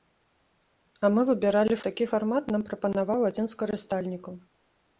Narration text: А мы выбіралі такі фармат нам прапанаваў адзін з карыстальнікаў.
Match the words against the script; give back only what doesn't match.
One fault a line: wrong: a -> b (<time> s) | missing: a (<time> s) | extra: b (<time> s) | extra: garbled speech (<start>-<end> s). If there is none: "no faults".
no faults